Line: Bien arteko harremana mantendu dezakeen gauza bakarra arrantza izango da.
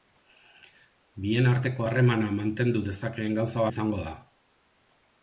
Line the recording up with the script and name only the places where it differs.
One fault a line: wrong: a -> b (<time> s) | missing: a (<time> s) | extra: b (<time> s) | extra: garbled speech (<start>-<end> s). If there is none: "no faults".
missing: bakarra arrantza (3.7 s)